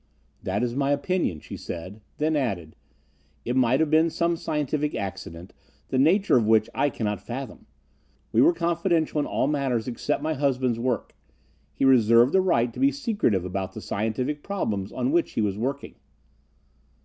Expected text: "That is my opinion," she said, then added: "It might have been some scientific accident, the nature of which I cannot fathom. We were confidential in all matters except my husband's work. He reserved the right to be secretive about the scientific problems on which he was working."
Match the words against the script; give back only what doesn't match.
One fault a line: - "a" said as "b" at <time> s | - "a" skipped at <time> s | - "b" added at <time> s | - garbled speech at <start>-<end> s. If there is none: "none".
none